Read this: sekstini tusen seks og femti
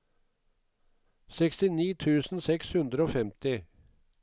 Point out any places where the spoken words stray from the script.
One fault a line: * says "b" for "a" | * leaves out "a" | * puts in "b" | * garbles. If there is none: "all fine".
* puts in "hundre"